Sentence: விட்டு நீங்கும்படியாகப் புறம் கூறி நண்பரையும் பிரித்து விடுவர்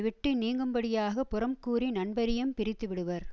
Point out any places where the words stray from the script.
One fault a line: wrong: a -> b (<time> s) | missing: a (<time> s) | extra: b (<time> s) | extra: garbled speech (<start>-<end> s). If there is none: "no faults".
no faults